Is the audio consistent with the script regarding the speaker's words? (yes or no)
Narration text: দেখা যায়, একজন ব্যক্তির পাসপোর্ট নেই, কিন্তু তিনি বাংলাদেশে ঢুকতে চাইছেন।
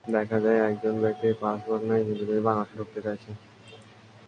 yes